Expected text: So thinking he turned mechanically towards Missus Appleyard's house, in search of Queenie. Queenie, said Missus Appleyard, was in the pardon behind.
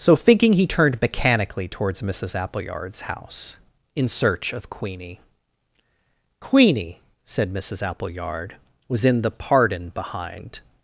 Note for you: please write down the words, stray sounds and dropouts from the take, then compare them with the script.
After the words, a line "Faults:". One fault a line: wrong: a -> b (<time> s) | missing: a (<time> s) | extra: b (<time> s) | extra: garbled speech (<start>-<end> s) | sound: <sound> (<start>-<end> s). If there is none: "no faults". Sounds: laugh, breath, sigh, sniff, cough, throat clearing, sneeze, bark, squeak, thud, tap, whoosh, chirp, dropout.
So thinking he turned mechanically towards Missus Appleyard's house, in search of Queenie. Queenie, said Missus Appleyard, was in the pardon behind.
Faults:
no faults